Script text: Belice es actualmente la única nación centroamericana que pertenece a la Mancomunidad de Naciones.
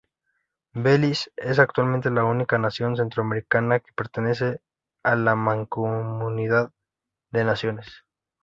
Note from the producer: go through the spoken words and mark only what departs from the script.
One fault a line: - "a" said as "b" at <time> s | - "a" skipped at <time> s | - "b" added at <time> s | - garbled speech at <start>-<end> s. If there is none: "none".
none